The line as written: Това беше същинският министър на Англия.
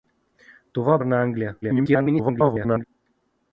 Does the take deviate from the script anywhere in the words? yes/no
yes